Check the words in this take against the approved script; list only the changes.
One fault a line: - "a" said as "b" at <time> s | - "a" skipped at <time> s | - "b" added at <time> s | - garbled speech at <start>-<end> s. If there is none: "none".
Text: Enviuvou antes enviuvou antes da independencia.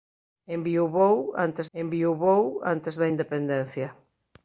none